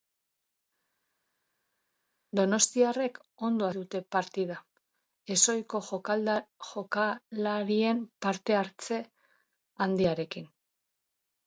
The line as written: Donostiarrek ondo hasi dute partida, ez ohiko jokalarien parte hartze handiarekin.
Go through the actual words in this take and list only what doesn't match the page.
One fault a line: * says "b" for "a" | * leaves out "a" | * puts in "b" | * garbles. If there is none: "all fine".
* leaves out "hasi"